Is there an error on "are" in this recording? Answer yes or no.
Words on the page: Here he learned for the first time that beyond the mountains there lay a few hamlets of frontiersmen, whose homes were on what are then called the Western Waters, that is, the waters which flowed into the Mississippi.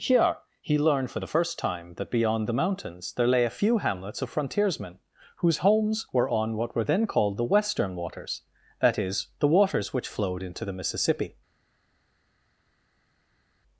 yes